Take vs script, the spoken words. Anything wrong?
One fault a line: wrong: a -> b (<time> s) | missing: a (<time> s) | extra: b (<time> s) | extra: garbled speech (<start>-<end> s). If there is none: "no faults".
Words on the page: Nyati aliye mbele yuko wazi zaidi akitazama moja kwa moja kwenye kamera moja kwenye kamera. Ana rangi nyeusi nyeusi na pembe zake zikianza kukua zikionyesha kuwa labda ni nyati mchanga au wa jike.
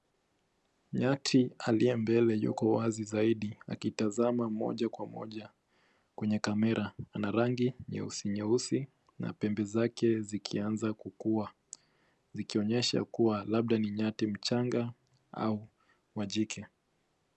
missing: moja kwenye kamera (6.9 s)